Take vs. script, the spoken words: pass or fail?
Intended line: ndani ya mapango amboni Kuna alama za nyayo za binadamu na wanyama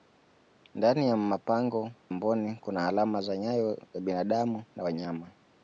pass